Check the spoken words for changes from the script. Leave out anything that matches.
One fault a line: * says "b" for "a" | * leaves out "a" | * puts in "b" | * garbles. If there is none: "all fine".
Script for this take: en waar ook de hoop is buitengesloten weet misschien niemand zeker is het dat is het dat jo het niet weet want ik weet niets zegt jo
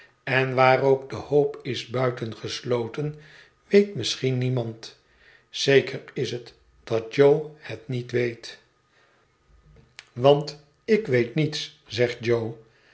* leaves out "is het dat"